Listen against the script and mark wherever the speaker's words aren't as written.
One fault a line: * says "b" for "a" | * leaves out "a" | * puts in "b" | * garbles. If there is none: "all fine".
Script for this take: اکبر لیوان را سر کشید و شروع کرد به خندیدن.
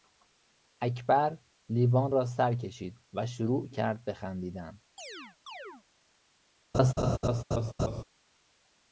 all fine